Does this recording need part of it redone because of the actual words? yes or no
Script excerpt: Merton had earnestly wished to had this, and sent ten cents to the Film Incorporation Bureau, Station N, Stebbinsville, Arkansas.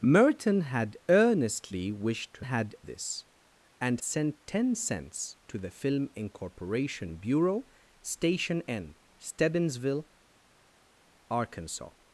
no